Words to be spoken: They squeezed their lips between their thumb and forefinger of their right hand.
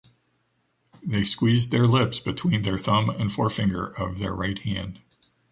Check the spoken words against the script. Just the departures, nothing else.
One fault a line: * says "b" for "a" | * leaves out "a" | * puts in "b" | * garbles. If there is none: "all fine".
all fine